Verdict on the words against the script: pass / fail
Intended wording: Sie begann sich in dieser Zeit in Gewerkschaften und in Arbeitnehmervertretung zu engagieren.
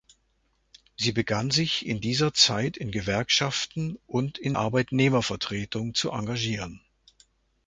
pass